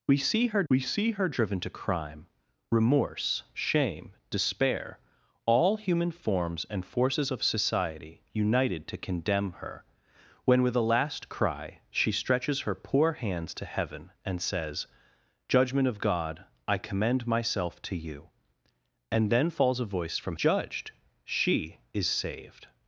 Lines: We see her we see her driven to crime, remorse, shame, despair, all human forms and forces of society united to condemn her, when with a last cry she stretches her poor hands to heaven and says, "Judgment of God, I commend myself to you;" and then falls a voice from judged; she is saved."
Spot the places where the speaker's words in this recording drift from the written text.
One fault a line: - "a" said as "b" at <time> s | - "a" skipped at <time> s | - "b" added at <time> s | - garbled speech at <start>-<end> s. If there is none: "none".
none